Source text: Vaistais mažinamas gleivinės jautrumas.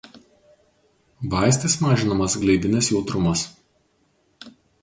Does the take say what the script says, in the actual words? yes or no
yes